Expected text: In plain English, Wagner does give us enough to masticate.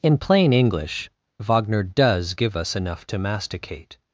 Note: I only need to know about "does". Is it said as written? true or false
true